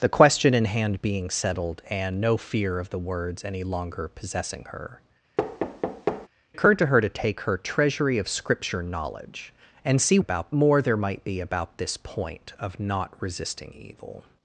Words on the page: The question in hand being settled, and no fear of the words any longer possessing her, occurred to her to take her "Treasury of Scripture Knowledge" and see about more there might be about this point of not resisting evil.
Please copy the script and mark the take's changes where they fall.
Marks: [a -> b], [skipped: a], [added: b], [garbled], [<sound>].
The question in hand being settled, and no fear of the words any longer possessing her, [thud] occurred to her to take her "Treasury of Scripture Knowledge" and see about more there might be about this point of not resisting evil.